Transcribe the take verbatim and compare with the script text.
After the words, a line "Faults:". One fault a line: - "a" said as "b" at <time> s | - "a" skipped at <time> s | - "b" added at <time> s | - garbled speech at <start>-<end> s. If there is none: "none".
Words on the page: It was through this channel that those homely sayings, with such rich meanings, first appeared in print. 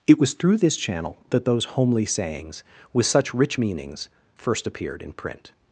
It was through this channel that those homely sayings, with such rich meanings, first appeared in print.
Faults:
none